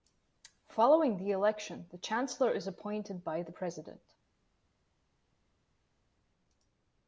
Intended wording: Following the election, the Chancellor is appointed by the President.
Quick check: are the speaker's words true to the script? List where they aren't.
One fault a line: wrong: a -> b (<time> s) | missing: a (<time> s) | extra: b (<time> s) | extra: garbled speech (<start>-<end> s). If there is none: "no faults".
no faults